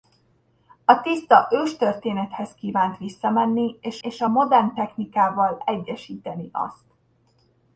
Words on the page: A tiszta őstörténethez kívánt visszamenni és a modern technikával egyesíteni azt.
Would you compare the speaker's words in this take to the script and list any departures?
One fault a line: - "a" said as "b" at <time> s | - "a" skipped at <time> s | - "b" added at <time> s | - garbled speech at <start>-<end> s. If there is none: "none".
- "és" added at 4.0 s